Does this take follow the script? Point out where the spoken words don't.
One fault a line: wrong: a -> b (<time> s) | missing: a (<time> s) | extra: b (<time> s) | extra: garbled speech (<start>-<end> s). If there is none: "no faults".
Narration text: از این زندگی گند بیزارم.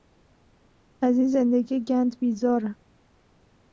no faults